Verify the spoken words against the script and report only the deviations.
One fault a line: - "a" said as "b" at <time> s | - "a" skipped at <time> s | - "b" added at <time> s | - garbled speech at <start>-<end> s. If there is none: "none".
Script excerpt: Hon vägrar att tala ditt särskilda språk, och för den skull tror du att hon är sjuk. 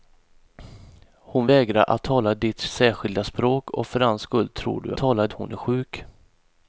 - "att" said as "tala" at 5.0 s